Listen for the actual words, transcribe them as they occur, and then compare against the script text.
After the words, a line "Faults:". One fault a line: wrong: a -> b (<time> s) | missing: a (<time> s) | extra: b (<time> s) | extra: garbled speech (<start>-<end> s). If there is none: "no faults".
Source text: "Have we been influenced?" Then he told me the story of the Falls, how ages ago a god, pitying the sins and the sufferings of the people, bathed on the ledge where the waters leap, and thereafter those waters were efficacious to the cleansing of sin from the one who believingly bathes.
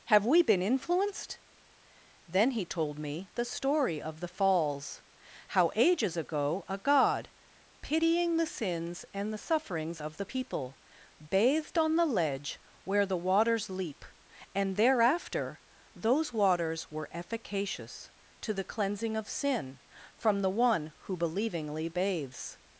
"Have we been influenced?" Then he told me the story of the Falls, how ages ago a god, pitying the sins and the sufferings of the people, bathed on the ledge where the waters leap, and thereafter those waters were efficacious to the cleansing of sin from the one who believingly bathes.
Faults:
no faults